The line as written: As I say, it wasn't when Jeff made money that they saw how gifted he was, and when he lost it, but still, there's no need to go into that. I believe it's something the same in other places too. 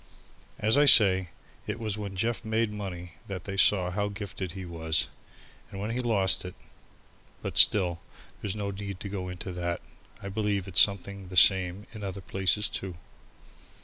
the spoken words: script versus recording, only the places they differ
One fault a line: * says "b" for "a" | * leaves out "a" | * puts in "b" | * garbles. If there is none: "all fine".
* says "was" for "wasn't"